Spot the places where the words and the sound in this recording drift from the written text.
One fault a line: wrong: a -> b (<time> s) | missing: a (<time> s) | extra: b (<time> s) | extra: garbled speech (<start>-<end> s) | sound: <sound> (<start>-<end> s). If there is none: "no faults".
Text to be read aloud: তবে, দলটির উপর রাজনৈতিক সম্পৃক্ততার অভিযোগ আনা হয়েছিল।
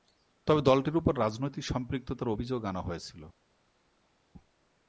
no faults